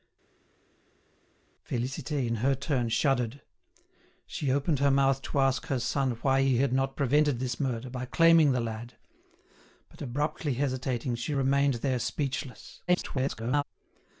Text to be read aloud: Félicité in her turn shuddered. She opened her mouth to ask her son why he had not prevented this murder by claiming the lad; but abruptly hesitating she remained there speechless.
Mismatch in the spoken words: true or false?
true